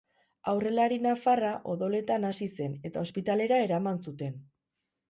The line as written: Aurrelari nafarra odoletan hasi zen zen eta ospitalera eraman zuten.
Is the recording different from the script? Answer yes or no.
yes